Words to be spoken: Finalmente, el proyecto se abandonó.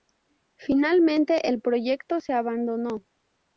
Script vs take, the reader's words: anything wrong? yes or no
no